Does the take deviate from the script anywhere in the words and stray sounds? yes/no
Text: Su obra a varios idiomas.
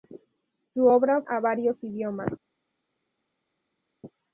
no